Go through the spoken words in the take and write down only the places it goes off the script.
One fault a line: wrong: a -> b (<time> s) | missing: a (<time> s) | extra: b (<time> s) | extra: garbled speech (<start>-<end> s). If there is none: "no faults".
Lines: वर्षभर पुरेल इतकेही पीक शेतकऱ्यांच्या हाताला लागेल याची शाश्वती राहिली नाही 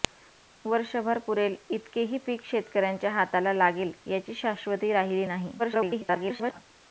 extra: garbled speech (5.6-6.6 s)